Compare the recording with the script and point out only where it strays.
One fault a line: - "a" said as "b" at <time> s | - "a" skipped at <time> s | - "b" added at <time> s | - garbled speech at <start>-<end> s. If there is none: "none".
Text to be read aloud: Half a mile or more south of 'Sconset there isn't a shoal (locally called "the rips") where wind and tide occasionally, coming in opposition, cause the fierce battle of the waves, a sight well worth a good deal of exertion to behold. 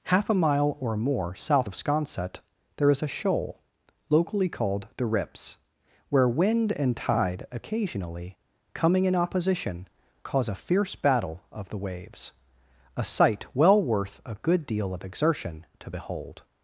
- "isn't" said as "is" at 2.9 s
- "the" said as "a" at 10.5 s